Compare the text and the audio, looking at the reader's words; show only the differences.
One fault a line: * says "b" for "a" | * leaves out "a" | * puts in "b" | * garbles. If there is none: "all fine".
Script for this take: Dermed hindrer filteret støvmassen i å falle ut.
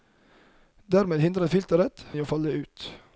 * leaves out "støvmassen"